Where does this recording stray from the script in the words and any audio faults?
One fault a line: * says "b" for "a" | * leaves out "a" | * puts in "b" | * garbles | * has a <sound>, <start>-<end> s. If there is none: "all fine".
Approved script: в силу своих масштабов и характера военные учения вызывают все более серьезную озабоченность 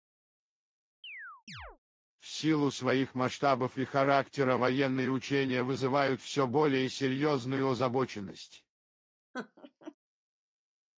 * has a chirp, 1.0-1.8 s
* has a laugh, 9.3-9.9 s